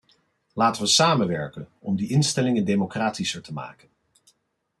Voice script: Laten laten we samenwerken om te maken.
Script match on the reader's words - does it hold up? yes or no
no